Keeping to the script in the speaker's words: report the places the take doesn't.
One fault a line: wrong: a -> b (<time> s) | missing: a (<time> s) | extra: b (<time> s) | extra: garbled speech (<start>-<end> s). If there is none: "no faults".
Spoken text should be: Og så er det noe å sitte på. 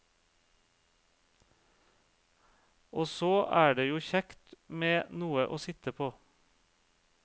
extra: jo kjekt med (3.9 s)